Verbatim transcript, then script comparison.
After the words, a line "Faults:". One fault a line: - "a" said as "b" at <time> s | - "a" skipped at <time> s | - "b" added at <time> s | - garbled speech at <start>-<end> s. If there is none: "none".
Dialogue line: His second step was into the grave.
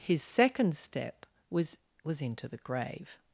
His second step was was into the grave.
Faults:
- "was" added at 2.0 s